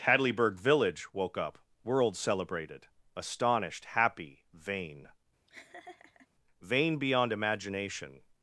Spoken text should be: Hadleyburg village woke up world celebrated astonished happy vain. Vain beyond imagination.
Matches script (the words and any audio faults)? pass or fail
fail